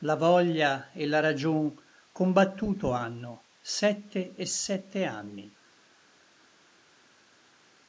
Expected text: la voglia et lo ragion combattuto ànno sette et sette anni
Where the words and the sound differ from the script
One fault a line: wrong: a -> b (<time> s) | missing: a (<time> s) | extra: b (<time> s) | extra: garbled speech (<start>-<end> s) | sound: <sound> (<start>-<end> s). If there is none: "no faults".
wrong: lo -> la (1.1 s)